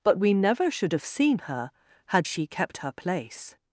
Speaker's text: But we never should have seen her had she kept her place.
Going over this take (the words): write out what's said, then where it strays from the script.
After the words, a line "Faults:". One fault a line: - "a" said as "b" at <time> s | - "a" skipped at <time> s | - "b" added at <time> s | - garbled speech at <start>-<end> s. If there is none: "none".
But we never should have seen her had she kept her place.
Faults:
none